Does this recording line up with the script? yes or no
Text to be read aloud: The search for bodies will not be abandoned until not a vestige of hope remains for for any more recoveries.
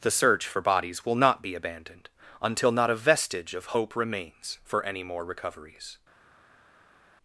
no